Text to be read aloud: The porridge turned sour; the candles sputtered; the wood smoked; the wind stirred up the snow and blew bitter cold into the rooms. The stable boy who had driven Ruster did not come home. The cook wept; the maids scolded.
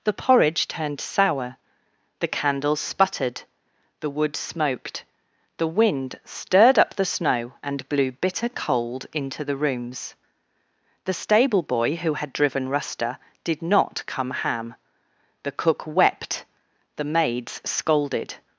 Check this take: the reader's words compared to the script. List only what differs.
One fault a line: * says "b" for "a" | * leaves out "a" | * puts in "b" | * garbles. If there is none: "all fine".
* says "ham" for "home"